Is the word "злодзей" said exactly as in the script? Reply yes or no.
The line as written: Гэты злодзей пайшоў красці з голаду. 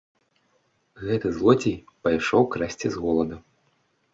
yes